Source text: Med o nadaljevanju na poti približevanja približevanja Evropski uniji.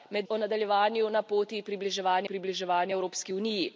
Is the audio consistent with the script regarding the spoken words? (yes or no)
yes